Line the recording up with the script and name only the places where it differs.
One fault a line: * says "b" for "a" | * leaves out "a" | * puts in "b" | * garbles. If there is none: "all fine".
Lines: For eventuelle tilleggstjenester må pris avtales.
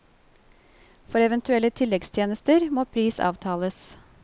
all fine